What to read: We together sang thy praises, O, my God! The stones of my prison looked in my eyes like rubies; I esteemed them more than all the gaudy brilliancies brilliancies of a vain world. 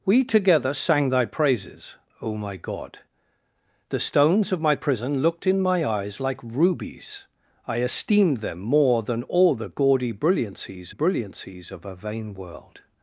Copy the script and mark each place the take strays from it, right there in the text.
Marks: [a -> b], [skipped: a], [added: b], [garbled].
We together sang thy praises, O, my God! The stones of my prison looked in my eyes like rubies; I esteemed them more than all the gaudy brilliancies brilliancies of a vain world.